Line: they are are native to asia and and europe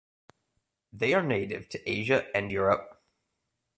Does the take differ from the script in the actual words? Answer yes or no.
yes